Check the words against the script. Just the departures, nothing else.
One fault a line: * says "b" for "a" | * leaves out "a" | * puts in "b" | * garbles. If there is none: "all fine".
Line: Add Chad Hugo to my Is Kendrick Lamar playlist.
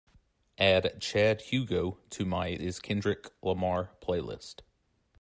all fine